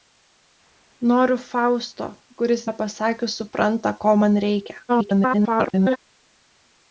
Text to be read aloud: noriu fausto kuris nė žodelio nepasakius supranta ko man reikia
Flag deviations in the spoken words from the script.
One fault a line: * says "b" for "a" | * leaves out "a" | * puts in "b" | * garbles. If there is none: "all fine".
* leaves out "nė žodelio"
* garbles